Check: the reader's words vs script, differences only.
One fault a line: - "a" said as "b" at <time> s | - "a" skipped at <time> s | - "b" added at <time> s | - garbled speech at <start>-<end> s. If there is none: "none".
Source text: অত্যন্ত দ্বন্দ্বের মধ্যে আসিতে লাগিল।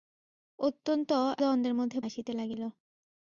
none